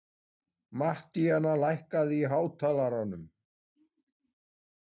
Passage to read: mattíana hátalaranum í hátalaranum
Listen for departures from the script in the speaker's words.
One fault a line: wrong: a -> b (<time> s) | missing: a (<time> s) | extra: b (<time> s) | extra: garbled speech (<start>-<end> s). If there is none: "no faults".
wrong: hátalaranum -> lækkaðu (1.6 s)